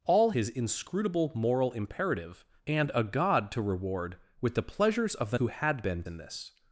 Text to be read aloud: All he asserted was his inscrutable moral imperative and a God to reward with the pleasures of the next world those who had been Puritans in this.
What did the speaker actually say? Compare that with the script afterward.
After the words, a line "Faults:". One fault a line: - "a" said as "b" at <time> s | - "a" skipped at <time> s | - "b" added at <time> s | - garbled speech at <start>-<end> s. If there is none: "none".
All his inscrutable moral imperative and a God to reward with the pleasures of the who had been In this.
Faults:
- "he asserted was" skipped at 0.3 s
- "next world those" skipped at 5.4 s
- "Puritans" skipped at 6.0 s